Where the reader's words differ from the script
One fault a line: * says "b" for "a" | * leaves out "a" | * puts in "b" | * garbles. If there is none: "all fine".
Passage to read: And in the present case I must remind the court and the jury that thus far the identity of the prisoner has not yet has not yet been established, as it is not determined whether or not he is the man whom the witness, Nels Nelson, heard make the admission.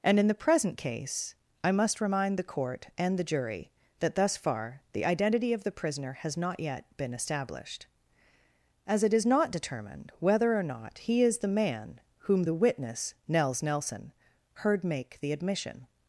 * leaves out "has not yet"